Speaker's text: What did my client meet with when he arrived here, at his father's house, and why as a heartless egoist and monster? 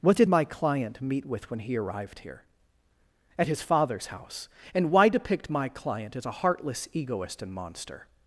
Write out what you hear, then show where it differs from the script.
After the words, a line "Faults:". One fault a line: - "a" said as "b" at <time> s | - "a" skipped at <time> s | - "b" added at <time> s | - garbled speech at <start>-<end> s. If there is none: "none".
What did my client meet with when he arrived here, at his father's house, and why depict my client as a heartless egoist and monster?
Faults:
- "depict my client" added at 5.1 s